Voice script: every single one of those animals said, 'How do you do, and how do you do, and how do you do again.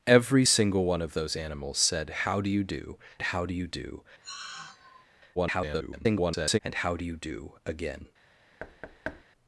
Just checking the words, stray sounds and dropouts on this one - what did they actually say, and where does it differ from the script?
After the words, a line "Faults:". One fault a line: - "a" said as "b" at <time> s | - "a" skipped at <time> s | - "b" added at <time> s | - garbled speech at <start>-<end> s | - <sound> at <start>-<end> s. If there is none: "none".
every single one of those animals said, 'How do you do, how do you do, [garbled] and how do you do again.
Faults:
- "and" skipped at 3.0 s
- sigh at 4.2-5.1 s
- garbled speech at 5.4-6.6 s
- thud at 8.6-9.2 s